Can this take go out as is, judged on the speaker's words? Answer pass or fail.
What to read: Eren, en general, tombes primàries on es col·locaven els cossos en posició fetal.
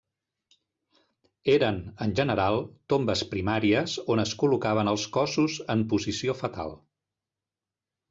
pass